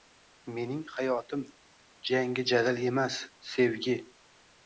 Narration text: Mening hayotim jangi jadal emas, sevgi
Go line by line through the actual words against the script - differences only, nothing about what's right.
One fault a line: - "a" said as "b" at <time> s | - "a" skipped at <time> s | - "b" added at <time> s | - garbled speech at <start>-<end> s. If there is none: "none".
none